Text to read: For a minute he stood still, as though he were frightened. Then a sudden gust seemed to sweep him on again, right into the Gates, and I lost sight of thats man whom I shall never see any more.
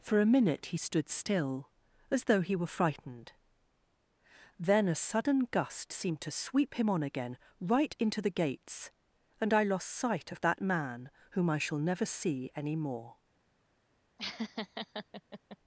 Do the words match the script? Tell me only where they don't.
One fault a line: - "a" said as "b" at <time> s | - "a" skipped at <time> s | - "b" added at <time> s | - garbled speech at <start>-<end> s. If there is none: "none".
- "thats" said as "that" at 10.4 s